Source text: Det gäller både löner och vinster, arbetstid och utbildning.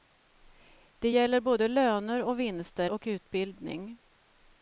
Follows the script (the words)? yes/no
no